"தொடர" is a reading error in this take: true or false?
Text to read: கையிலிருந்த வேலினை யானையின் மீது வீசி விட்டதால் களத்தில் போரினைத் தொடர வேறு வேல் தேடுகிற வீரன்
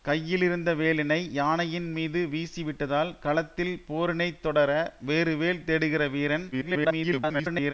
false